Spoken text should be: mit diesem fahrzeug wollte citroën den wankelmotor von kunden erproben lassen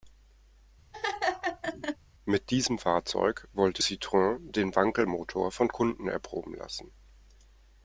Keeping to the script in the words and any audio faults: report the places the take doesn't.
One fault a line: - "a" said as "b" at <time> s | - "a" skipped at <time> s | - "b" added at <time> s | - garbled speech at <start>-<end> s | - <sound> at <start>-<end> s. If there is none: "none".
- laugh at 0.9-2.0 s